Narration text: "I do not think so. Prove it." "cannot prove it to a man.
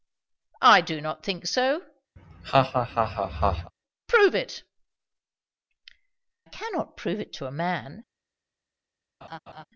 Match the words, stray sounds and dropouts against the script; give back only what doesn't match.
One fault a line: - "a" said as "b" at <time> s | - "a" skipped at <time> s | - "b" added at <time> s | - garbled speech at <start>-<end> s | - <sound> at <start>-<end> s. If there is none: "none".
- laugh at 2.2-3.7 s
- laugh at 9.2-9.6 s